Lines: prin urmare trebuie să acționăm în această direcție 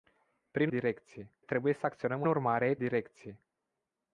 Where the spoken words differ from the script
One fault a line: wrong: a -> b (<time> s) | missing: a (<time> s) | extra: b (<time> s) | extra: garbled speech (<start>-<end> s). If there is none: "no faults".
wrong: urmare -> direcție (0.7 s)
wrong: această -> urmare (2.3 s)